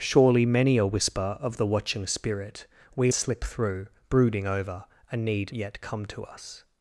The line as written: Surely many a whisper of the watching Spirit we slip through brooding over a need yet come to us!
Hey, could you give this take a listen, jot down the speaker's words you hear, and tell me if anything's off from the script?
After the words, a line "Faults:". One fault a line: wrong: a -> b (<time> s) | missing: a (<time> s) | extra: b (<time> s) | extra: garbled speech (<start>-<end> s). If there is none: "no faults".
Surely many a whisper of the watching Spirit we slip through brooding over a need yet come to us!
Faults:
no faults